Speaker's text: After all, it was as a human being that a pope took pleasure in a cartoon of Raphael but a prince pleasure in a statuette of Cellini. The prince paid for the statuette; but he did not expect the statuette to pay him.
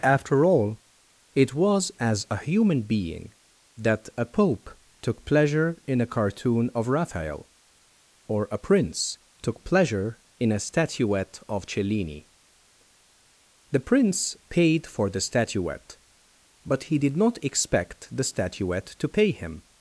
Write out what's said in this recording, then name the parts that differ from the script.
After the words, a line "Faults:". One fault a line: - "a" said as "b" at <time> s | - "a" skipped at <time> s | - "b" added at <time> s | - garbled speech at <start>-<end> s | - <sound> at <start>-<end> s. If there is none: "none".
After all, it was as a human being that a pope took pleasure in a cartoon of Raphael or a prince took pleasure in a statuette of Cellini. The prince paid for the statuette; but he did not expect the statuette to pay him.
Faults:
- "but" said as "or" at 8.3 s
- "took" added at 9.4 s